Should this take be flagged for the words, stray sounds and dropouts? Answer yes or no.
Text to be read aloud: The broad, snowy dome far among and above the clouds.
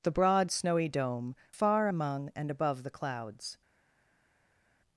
no